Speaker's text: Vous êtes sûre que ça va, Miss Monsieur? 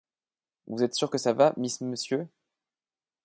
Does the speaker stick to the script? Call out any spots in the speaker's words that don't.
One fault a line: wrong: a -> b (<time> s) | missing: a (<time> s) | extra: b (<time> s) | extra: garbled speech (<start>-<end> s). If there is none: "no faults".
no faults